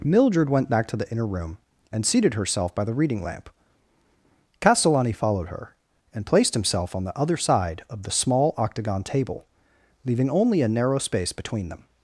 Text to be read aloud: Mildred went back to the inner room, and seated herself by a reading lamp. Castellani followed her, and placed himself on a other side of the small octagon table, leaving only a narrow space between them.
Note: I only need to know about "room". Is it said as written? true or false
true